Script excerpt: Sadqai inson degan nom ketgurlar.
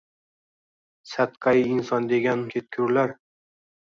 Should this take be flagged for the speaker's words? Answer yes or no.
yes